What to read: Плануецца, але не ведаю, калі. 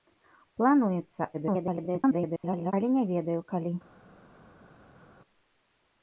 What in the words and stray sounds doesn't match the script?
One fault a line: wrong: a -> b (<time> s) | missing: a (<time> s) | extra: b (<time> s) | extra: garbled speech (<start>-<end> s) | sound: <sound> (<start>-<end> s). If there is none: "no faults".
extra: garbled speech (1.3-2.7 s)